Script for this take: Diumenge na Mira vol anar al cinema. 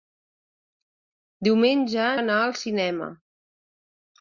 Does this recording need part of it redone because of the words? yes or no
yes